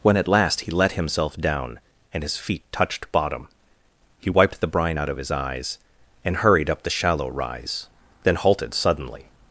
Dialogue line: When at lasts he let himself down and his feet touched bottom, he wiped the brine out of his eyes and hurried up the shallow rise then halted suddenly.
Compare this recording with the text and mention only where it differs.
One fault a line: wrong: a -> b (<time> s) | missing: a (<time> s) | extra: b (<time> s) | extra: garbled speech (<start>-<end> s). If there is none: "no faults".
wrong: lasts -> last (0.3 s)